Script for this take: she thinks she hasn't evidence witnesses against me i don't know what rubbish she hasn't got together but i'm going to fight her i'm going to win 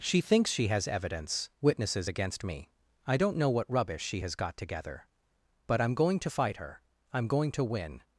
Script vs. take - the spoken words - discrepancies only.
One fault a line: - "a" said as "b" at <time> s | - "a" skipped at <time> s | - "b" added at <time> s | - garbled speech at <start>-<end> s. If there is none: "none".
- "hasn't" said as "has" at 0.7 s
- "hasn't" said as "has" at 4.2 s